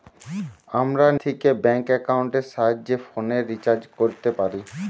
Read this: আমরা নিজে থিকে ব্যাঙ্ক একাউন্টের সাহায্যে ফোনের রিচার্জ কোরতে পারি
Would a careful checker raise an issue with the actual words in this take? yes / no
yes